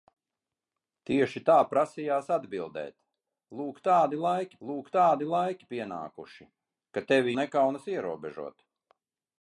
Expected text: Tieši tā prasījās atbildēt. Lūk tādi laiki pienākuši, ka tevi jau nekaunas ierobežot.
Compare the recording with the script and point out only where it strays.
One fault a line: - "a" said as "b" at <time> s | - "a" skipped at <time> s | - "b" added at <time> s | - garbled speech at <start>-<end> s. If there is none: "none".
- "lūk tādi laiki" added at 4.7 s
- "jau" skipped at 7.4 s